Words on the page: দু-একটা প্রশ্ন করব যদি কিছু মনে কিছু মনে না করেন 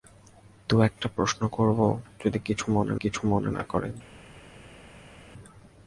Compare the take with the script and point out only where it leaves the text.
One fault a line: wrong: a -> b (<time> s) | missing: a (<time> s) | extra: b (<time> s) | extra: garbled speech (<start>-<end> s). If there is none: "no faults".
no faults